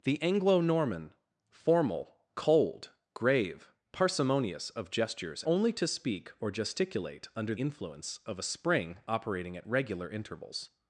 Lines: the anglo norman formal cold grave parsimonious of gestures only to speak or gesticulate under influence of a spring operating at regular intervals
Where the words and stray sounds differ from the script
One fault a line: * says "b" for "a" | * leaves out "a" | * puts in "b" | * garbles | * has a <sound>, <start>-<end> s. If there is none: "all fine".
all fine